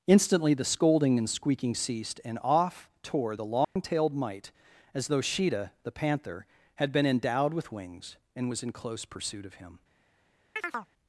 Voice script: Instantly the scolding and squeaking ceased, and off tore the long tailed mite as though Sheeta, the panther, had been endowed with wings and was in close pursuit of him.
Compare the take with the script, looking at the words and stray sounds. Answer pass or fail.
fail